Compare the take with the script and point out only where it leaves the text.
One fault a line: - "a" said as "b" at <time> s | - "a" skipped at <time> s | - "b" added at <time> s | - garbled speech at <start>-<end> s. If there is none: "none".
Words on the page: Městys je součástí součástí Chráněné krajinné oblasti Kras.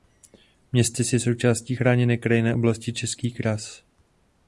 - "součástí" skipped at 1.8 s
- "Český" added at 2.9 s